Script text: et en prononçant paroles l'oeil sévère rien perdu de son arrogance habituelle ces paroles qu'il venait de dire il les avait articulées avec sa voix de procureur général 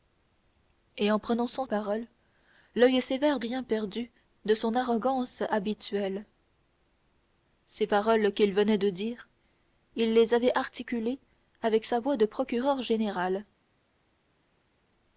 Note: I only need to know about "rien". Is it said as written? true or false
true